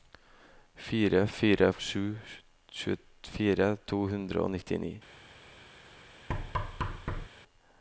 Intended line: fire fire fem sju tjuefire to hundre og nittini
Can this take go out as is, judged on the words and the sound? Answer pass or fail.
fail